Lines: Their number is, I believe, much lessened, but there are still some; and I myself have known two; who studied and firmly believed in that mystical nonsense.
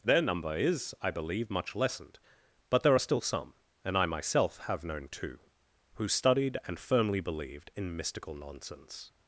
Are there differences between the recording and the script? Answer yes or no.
yes